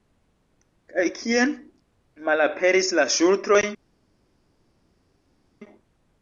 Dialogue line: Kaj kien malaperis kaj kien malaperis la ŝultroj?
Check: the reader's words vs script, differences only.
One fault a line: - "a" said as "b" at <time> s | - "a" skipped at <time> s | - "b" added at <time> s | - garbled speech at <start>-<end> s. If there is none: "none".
- "kaj kien malaperis" skipped at 3.0 s